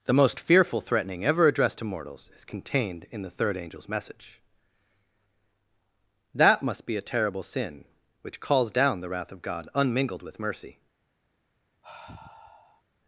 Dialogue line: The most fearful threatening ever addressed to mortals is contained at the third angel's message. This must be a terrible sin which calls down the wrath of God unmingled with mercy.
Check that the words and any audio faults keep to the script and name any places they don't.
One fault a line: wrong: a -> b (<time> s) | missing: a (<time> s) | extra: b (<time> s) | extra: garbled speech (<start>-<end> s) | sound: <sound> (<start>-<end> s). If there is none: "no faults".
wrong: at -> in (3.1 s)
wrong: This -> That (6.3 s)
sound: sigh (11.8-12.8 s)